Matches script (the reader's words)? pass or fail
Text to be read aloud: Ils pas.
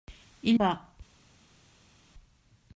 pass